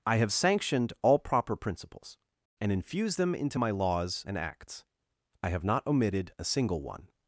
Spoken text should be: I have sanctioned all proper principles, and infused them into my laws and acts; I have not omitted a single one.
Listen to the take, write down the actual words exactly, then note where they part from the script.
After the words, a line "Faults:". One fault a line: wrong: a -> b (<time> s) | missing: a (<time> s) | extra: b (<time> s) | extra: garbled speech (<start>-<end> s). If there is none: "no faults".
I have sanctioned all proper principles, and infused them into my laws and acts; I have not omitted a single one.
Faults:
no faults